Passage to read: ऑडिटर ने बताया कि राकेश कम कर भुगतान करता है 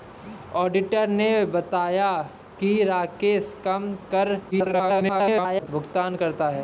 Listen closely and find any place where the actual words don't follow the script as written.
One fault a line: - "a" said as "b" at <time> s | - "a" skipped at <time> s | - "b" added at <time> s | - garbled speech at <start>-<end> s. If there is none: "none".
- garbled speech at 4.5-5.7 s